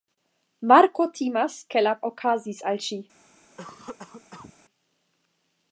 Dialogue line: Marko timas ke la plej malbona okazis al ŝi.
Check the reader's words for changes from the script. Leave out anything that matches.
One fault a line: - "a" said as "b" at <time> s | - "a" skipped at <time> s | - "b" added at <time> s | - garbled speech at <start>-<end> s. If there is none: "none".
- "plej malbona" skipped at 1.9 s